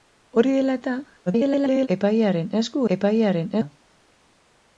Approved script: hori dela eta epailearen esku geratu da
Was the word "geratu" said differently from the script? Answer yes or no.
yes